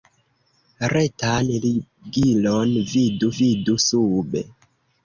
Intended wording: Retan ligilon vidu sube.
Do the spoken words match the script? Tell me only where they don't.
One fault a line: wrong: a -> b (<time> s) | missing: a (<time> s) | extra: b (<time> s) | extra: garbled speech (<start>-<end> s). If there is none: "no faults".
extra: vidu (3.4 s)